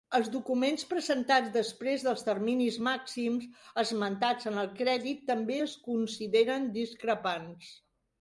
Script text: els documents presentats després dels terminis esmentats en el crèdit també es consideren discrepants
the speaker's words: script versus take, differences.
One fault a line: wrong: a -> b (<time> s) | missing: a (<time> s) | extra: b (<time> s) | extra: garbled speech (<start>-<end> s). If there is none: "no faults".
extra: màxims (2.9 s)